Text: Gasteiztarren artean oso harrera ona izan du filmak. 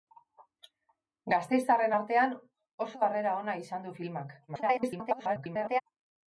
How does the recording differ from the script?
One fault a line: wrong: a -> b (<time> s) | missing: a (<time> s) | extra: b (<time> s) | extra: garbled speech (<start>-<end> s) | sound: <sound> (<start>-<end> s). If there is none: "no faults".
extra: garbled speech (4.5-5.8 s)